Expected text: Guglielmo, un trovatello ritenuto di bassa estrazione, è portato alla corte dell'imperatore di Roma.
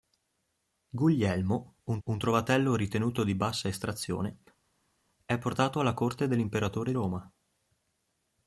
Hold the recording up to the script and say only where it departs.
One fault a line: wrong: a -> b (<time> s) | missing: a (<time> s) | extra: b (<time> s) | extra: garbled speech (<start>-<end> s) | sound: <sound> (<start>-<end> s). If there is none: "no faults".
extra: un (2.0 s)
missing: di (6.9 s)